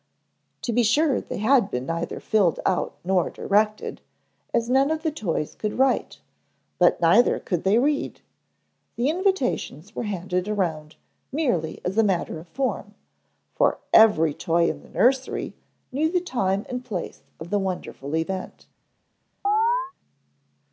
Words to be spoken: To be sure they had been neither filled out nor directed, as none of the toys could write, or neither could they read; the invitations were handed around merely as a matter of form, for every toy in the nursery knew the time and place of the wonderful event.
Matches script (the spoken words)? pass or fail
fail